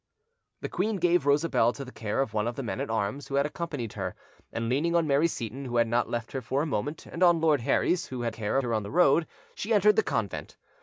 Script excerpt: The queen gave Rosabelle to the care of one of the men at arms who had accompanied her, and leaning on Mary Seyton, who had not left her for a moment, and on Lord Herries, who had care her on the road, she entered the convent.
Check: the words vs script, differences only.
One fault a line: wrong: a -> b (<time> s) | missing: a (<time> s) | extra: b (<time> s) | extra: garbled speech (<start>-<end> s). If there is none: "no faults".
no faults